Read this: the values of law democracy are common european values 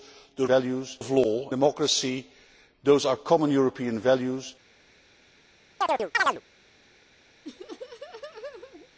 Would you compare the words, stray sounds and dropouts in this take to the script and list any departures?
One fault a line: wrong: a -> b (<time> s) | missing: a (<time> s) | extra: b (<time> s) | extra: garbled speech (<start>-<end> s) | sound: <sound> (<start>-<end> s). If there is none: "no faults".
sound: chirp (5.8-6.4 s)
sound: laugh (7.4-8.9 s)